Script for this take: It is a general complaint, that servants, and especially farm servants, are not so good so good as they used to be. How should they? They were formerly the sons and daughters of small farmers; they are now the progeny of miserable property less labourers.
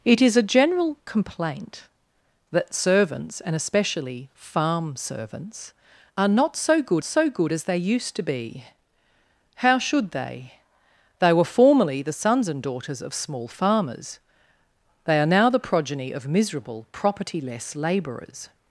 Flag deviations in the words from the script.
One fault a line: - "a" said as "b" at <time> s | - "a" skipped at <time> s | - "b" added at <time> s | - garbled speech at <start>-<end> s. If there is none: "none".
none